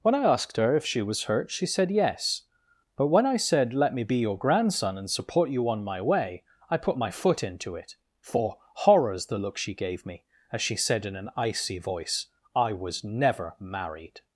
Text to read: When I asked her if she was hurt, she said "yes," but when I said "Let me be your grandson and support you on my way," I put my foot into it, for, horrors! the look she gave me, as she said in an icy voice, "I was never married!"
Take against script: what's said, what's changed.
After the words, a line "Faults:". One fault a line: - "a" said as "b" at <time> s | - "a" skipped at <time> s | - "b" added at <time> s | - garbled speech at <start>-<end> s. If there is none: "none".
When I asked her if she was hurt, she said "yes," but when I said "Let me be your grandson and support you on my way," I put my foot into it, for, horrors! the look she gave me, as she said in an icy voice, "I was never married!"
Faults:
none